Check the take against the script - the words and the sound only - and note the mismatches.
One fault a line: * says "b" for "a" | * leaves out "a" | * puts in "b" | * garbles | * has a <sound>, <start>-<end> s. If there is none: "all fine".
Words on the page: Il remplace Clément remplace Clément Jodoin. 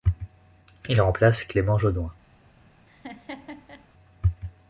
* leaves out "remplace Clément"
* has a laugh, 2.9-3.9 s